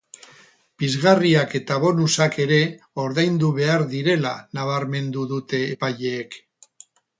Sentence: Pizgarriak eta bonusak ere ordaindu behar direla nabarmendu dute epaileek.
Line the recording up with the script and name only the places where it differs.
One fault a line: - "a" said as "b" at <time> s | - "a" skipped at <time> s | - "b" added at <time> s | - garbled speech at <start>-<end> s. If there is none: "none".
none